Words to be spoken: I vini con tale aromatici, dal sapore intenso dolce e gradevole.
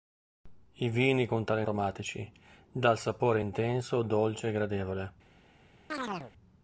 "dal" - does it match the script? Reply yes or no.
yes